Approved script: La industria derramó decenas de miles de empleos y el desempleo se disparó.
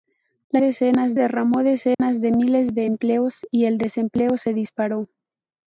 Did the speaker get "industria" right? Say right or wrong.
wrong